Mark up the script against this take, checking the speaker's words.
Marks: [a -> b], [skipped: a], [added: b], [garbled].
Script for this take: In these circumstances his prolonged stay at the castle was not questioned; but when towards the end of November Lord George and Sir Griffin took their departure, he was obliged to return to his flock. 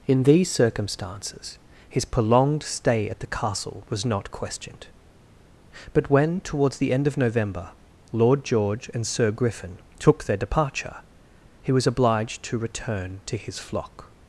In these circumstances his prolonged stay at the castle was not questioned; but when towards the end of November Lord George and Sir Griffin took their departure, he was obliged to return to his flock.